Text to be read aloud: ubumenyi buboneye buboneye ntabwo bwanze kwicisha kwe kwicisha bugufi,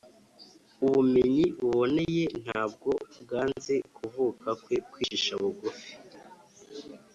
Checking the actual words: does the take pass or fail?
fail